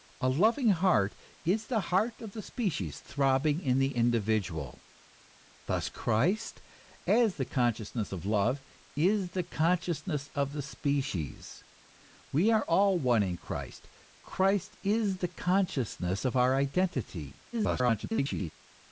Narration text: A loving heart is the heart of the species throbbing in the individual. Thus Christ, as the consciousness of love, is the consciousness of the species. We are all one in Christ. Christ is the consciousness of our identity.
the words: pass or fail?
fail